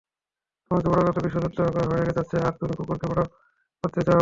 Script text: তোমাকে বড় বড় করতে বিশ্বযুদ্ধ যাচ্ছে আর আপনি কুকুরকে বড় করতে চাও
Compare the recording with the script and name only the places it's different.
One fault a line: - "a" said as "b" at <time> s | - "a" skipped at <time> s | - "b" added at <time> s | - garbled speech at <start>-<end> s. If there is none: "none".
- "বড়" skipped at 1.0 s
- "হয়ে" added at 1.9 s
- "আপনি" said as "তুমি" at 2.6 s